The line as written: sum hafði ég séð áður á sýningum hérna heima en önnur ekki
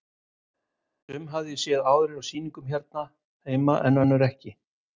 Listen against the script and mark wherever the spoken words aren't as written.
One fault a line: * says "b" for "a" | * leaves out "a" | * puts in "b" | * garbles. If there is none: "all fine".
all fine